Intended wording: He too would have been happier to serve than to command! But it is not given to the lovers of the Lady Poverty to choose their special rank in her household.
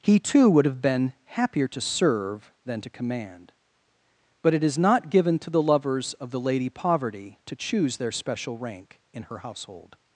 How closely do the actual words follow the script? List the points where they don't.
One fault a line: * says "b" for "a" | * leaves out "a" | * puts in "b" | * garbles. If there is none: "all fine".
all fine